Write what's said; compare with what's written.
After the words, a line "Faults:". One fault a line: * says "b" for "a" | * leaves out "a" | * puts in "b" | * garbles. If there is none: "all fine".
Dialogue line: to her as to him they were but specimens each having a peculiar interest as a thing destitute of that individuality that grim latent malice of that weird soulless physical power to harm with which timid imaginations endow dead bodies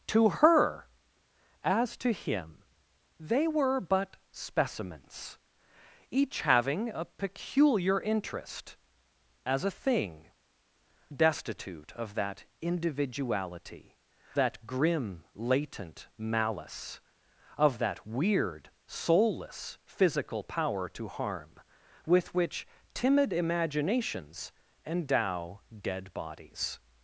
to her as to him they were but specimens each having a peculiar interest as a thing destitute of that individuality that grim latent malice of that weird soulless physical power to harm with which timid imaginations endow dead bodies
Faults:
all fine